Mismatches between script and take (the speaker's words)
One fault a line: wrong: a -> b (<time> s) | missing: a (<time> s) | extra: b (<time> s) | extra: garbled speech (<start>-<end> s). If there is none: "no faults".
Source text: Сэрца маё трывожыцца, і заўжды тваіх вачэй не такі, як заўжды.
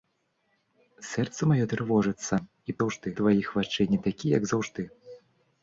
no faults